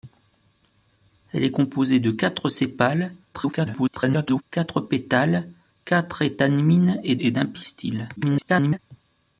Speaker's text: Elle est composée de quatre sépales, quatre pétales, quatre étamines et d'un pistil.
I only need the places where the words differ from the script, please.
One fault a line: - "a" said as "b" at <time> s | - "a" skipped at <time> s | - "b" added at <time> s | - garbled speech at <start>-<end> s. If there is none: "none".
- garbled speech at 3.3-4.4 s
- "et" added at 7.2 s
- garbled speech at 8.2-8.8 s